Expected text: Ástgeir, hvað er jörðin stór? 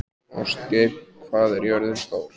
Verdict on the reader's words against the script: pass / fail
pass